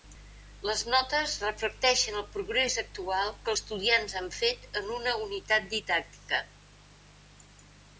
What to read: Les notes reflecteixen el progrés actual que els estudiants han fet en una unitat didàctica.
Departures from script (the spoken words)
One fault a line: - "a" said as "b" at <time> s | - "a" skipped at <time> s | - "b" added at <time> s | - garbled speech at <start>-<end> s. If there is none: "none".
- "els" skipped at 3.5 s